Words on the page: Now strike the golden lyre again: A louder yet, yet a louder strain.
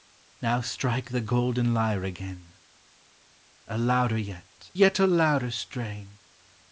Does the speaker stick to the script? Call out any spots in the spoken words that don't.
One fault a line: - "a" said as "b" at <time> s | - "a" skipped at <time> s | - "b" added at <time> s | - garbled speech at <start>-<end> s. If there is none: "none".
none